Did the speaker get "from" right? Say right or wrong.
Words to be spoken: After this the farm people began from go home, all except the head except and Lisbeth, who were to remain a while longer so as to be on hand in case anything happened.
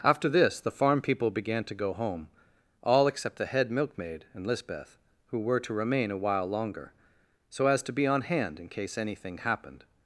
wrong